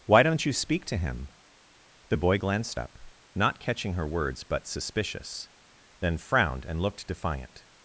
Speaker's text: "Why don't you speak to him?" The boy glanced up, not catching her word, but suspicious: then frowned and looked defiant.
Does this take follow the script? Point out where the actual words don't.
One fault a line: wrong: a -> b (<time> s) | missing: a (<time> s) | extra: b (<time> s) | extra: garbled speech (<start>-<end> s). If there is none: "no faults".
wrong: word -> words (4.1 s)